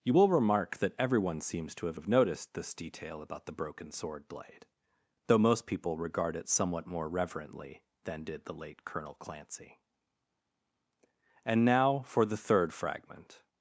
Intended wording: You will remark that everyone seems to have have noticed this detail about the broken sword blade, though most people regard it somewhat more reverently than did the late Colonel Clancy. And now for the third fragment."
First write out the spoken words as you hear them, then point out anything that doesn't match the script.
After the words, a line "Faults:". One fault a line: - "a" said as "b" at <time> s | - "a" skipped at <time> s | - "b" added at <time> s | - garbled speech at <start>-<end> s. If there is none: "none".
You will remark that everyone seems to have have noticed this detail about the broken sword blade, though most people regard it somewhat more reverently than did the late Colonel Clancy. And now for the third fragment."
Faults:
none